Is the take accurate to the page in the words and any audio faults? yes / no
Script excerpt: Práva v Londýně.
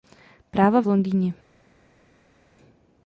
yes